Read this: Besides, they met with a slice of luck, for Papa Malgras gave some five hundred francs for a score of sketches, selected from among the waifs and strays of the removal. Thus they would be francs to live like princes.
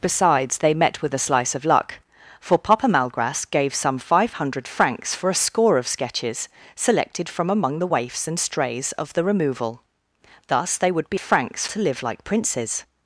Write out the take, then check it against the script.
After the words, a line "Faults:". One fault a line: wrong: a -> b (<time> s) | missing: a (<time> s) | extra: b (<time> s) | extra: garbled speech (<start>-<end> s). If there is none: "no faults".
Besides, they met with a slice of luck, for Papa Malgras gave some five hundred francs for a score of sketches, selected from among the waifs and strays of the removal. Thus they would be francs to live like princes.
Faults:
no faults